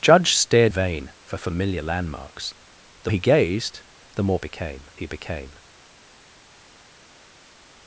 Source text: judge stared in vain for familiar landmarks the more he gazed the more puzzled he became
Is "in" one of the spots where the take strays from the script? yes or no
yes